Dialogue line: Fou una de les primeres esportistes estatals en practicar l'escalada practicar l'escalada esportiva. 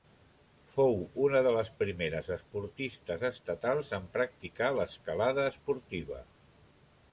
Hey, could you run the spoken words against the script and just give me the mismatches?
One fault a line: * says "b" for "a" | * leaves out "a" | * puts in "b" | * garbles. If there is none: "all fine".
* leaves out "practicar l'escalada"